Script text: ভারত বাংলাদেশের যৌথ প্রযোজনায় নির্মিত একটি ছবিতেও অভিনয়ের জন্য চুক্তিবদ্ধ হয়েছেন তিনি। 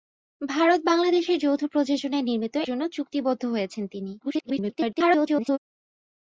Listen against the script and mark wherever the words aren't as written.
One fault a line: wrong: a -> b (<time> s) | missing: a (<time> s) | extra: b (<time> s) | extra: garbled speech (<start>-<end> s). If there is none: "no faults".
missing: একটি ছবিতেও অভিনয়ের (2.5 s)
extra: garbled speech (4.2-5.6 s)